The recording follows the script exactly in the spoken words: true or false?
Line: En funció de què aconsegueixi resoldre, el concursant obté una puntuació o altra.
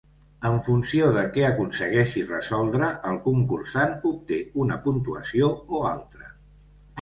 true